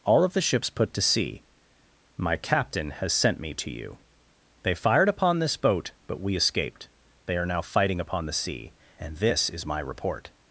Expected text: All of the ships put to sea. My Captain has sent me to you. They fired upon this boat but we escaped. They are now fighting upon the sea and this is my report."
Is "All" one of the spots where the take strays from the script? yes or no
no